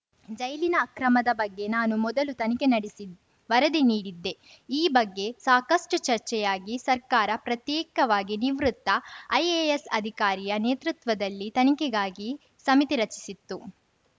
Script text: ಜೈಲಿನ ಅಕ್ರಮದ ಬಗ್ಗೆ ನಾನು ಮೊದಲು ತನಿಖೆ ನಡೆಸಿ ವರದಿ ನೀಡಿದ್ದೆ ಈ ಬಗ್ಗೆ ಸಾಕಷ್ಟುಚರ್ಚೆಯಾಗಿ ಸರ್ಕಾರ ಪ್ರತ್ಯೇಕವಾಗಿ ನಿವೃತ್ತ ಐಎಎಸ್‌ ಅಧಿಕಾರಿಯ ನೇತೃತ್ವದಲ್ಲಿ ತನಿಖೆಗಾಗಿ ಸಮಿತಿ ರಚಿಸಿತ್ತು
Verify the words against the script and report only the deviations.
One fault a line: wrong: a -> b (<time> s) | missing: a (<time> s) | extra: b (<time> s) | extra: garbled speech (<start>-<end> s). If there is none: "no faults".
no faults